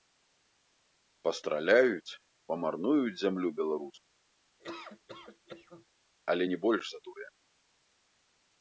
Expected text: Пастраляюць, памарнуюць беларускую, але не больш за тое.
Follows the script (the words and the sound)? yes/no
no